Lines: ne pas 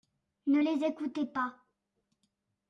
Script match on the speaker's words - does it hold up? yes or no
no